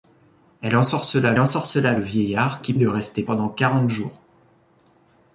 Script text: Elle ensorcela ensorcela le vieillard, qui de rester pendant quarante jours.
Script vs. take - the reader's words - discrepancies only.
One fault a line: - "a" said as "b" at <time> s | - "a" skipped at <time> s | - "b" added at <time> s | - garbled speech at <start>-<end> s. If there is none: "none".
none